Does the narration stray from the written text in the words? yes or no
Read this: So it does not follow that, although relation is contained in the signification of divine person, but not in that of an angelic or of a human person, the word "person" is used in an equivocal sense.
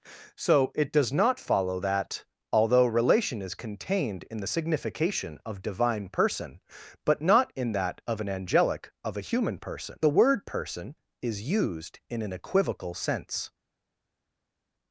yes